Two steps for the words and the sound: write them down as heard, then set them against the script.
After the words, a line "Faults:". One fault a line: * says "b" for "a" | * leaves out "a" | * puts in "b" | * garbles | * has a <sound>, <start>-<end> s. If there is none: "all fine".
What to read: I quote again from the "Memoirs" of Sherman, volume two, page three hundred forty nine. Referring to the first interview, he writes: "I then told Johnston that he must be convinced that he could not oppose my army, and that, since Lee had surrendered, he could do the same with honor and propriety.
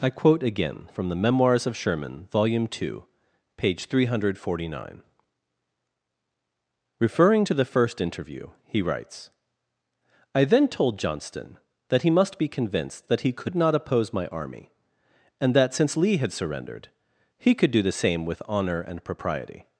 I quote again from the "Memoirs" of Sherman, volume two, page three hundred forty nine. Referring to the first interview, he writes: "I then told Johnston that he must be convinced that he could not oppose my army, and that, since Lee had surrendered, he could do the same with honor and propriety.
Faults:
all fine